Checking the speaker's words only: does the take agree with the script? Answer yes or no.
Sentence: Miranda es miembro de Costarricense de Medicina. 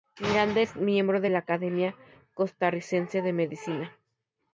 no